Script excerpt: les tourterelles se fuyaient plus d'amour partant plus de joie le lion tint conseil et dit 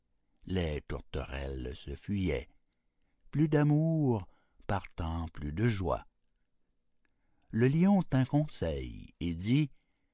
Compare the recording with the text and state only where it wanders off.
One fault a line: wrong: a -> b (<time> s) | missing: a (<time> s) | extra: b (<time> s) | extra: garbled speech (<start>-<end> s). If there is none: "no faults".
no faults